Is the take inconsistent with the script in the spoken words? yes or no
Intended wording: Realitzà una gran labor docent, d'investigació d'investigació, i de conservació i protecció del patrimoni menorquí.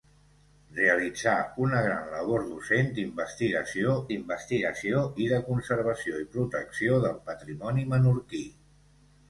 no